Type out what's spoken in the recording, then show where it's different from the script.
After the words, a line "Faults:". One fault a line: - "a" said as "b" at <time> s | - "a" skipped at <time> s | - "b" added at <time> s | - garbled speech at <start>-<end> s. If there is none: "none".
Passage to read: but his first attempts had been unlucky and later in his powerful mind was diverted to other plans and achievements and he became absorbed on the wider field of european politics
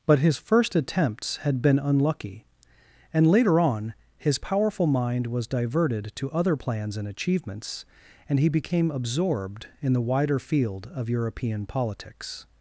but his first attempts had been unlucky and later on his powerful mind was diverted to other plans and achievements and he became absorbed in the wider field of european politics
Faults:
- "in" said as "on" at 3.6 s
- "on" said as "in" at 9.8 s